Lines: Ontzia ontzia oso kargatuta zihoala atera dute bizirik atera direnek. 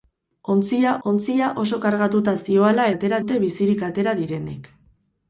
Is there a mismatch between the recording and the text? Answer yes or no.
no